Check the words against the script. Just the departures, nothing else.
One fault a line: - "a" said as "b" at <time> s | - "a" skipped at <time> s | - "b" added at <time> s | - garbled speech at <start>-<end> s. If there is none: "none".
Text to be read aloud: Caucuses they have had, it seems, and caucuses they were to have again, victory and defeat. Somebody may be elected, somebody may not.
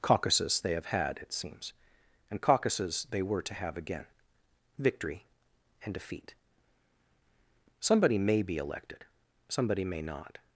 none